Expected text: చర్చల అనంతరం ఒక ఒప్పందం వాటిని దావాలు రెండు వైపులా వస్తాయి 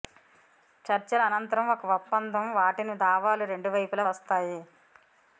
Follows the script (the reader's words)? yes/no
yes